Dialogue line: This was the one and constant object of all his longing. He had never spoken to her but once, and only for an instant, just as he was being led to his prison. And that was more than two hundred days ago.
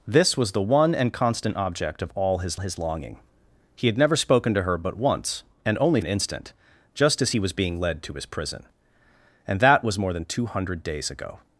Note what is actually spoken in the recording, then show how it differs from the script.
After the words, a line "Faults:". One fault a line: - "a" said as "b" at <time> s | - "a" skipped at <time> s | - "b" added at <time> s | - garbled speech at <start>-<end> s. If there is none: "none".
This was the one and constant object of all his his longing. He had never spoken to her but once, and only an instant, just as he was being led to his prison. And that was more than two hundred days ago.
Faults:
- "his" added at 2.6 s
- "for" skipped at 6.0 s